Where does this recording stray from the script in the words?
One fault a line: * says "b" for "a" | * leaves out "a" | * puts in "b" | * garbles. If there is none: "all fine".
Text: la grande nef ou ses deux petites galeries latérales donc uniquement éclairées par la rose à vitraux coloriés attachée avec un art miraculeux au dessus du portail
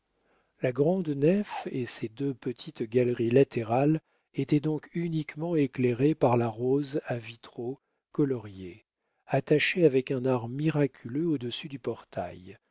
* says "et" for "ou"
* puts in "étaient"